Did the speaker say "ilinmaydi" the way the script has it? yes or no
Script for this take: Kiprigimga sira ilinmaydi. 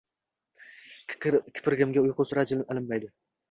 yes